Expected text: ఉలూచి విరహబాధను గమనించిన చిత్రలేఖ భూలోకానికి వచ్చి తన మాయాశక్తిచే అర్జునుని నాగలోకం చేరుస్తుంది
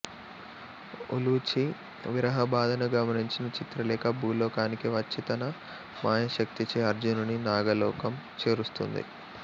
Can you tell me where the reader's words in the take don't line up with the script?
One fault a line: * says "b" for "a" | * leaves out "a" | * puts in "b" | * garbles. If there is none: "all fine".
all fine